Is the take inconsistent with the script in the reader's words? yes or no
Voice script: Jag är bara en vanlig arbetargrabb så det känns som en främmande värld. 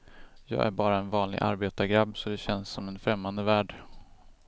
no